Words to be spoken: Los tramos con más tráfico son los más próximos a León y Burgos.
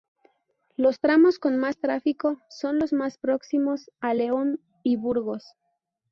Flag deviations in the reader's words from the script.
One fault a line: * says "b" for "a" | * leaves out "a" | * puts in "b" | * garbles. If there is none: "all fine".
all fine